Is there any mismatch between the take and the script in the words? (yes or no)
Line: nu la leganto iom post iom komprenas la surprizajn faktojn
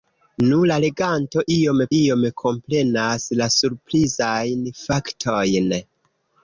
yes